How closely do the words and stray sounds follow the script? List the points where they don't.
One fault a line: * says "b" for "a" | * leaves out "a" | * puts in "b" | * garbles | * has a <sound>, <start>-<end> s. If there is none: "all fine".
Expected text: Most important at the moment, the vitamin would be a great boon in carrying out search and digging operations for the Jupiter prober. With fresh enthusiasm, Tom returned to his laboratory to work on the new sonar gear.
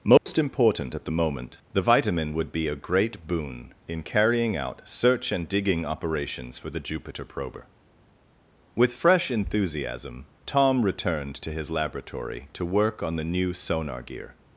* has a dropout, 0.2-0.3 s